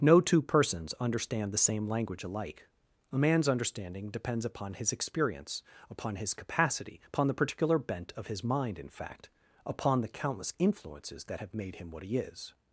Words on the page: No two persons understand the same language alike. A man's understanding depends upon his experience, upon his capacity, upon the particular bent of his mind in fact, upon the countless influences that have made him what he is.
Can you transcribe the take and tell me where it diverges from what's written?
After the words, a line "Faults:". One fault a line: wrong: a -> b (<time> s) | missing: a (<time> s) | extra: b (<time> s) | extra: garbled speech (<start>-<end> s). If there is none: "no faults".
No two persons understand the same language alike. A man's understanding depends upon his experience, upon his capacity, upon the particular bent of his mind in fact, upon the countless influences that have made him what he is.
Faults:
no faults